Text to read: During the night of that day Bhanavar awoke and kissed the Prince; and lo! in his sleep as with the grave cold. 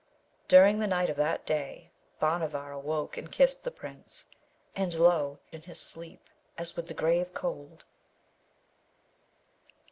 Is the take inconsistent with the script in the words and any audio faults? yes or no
no